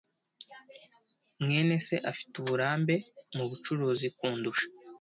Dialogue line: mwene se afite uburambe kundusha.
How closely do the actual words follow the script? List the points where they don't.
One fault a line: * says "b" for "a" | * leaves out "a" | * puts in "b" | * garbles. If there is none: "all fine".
* puts in "mubucuruzi"